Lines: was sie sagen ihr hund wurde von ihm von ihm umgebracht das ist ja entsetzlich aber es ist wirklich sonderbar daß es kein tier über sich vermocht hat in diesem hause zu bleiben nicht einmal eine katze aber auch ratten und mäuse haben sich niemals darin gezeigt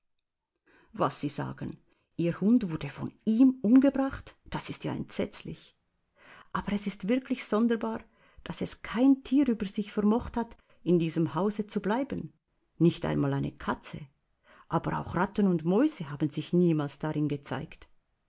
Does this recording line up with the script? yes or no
no